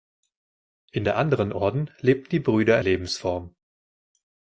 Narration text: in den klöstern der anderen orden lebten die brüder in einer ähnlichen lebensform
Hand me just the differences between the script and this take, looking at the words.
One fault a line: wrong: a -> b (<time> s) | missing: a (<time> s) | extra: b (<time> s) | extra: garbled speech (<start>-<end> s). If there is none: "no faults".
missing: den klöstern (1.1 s)
missing: in einer ähnlichen (2.8 s)